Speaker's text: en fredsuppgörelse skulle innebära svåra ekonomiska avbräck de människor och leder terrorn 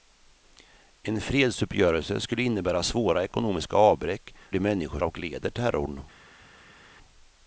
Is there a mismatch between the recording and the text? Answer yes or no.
no